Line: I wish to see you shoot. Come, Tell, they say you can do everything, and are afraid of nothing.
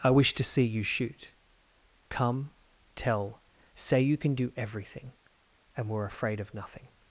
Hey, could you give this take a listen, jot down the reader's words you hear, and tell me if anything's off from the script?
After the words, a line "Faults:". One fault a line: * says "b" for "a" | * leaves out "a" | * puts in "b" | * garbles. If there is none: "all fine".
I wish to see you shoot. Come, Tell, say you can do everything, and were afraid of nothing.
Faults:
* leaves out "they"
* says "were" for "are"